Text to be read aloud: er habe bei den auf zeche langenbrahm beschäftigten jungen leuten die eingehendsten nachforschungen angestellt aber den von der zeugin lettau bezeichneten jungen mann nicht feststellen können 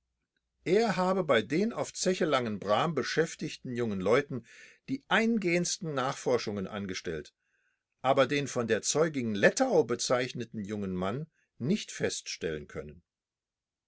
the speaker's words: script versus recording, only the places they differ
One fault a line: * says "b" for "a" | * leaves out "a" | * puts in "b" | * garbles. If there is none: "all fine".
all fine